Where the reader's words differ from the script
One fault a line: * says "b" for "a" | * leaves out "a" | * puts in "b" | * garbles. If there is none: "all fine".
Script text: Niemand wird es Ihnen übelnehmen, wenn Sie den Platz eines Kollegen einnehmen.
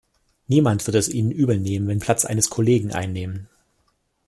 * leaves out "Sie den"